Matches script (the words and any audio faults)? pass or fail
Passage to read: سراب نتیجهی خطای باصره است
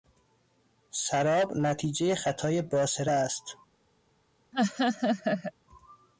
fail